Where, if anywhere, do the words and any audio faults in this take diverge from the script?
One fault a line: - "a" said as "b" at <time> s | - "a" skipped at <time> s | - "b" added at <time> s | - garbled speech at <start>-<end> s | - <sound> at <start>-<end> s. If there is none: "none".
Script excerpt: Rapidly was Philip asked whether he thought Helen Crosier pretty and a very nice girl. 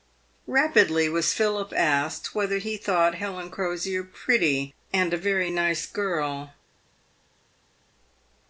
none